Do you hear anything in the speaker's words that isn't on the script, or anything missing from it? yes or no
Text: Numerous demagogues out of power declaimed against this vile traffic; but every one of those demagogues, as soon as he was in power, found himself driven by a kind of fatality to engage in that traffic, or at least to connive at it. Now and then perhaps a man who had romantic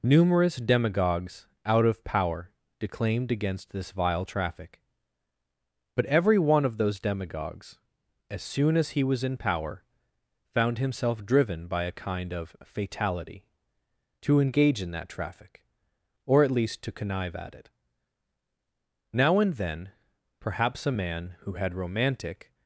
no